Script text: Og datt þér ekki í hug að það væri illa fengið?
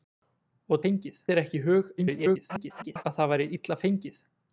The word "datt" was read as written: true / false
false